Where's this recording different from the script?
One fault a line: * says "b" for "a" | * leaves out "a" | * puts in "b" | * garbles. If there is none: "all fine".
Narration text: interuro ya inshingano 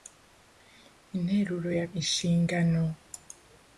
all fine